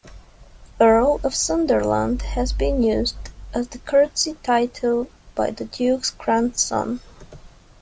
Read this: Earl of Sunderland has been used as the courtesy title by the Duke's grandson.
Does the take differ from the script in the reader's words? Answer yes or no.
no